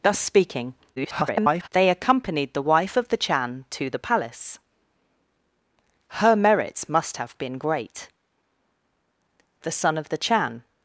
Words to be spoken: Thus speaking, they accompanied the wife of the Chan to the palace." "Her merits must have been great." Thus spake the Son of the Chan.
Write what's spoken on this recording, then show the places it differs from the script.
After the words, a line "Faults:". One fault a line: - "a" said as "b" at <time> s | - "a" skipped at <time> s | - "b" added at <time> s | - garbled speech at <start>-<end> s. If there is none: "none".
Thus speaking, [garbled] they accompanied the wife of the Chan to the palace." "Her merits must have been great." The Son of the Chan.
Faults:
- garbled speech at 1.0-1.7 s
- "Thus spake" skipped at 8.1 s